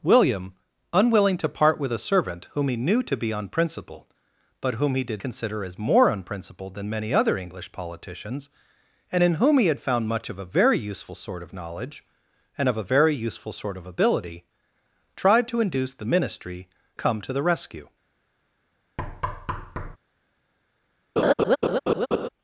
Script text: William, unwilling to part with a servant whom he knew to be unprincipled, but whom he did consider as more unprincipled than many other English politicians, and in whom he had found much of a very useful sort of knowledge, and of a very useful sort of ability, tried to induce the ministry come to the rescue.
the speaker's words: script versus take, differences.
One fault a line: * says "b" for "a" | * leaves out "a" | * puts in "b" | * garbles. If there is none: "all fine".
all fine